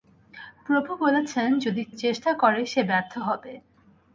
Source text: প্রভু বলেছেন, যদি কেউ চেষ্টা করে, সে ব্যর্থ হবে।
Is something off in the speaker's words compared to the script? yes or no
yes